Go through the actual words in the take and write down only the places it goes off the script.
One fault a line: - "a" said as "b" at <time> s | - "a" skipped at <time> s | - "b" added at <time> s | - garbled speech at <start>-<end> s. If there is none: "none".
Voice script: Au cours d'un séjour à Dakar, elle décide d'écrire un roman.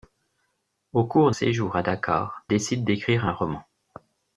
- "d'un" skipped at 1.3 s
- "elle" skipped at 2.4 s